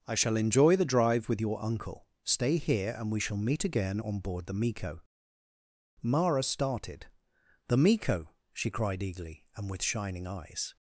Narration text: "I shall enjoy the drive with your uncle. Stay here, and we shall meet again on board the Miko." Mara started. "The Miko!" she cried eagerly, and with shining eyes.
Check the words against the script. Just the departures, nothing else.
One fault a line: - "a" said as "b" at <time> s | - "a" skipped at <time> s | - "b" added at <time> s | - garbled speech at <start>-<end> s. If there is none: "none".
none